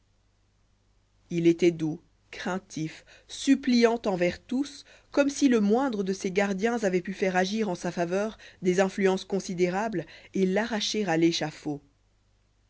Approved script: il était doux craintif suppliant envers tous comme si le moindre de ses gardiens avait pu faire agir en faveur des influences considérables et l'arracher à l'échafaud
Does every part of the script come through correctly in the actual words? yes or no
no